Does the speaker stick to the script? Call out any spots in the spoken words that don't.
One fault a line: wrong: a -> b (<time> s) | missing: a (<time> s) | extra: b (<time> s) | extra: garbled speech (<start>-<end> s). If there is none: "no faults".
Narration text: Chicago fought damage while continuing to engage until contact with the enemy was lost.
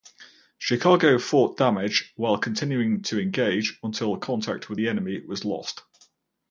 no faults